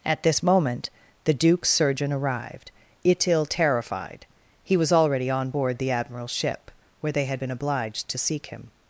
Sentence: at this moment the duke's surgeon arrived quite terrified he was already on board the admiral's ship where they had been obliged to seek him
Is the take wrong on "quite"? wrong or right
wrong